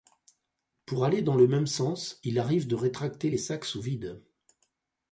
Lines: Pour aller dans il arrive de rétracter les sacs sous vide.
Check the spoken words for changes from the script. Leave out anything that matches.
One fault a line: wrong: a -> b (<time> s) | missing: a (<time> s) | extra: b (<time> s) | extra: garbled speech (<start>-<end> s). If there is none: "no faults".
extra: le même sens (1.4 s)